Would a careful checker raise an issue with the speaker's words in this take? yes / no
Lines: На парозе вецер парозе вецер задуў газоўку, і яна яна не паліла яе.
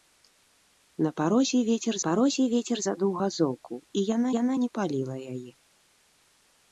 no